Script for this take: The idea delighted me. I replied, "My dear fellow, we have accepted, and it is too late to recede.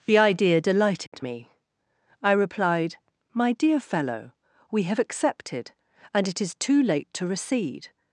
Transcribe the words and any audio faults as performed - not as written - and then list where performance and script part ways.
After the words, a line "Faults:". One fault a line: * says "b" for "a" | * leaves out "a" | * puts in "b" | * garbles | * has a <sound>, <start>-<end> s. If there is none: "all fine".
The idea delighted me. I replied, "My dear fellow, we have accepted, and it is too late to recede.
Faults:
* has a dropout, 1.1-1.1 s